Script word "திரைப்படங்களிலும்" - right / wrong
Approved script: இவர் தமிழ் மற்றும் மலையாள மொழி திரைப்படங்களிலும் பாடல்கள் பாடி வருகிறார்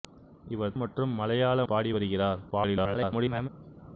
wrong